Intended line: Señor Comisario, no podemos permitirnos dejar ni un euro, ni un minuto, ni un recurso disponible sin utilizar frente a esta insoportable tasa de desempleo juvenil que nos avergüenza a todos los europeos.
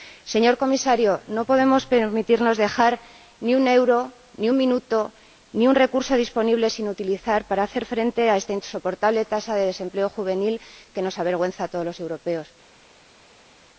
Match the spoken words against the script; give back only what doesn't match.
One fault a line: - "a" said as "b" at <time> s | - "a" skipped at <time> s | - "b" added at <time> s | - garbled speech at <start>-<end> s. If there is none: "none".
- "para hacer" added at 7.5 s